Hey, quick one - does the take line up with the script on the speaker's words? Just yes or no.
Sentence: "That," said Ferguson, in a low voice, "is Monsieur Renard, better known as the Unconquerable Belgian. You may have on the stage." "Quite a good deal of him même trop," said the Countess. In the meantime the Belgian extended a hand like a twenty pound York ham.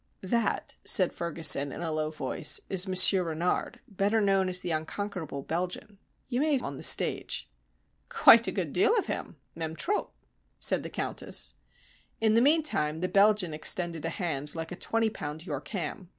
yes